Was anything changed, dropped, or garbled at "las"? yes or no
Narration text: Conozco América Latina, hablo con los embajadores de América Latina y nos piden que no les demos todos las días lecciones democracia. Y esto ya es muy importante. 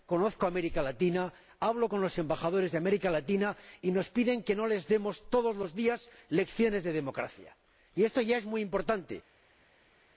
yes